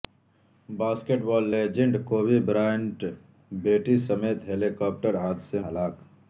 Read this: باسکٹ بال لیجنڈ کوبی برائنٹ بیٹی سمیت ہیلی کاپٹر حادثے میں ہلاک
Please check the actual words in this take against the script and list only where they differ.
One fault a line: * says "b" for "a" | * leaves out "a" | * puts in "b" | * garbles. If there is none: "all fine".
* leaves out "میں"